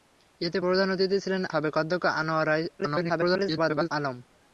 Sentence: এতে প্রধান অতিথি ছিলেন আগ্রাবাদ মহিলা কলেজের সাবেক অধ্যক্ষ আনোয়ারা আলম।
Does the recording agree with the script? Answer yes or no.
no